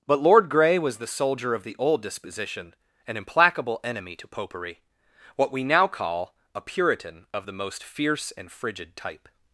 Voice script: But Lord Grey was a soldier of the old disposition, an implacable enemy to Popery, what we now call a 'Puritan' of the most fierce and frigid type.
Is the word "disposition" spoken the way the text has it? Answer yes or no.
yes